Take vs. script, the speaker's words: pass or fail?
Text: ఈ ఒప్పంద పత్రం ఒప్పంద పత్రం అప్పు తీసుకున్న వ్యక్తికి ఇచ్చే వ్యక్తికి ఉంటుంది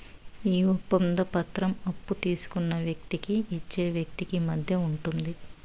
fail